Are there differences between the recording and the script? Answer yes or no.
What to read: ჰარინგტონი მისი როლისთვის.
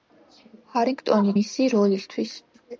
no